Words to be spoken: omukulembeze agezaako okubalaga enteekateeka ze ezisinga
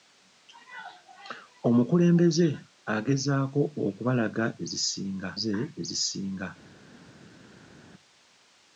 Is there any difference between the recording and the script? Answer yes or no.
yes